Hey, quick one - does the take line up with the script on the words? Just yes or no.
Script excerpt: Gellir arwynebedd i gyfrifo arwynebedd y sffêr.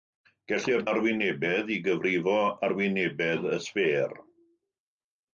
yes